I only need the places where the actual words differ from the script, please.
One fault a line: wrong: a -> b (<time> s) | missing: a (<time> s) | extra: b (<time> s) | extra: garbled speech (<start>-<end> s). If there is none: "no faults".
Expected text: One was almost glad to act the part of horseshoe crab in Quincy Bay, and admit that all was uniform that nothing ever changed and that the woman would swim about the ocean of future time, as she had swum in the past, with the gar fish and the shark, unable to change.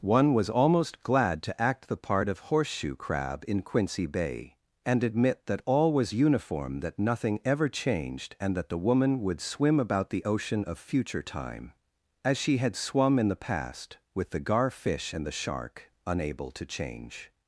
no faults